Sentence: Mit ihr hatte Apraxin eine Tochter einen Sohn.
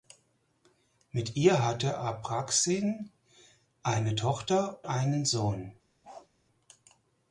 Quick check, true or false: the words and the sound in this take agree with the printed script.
false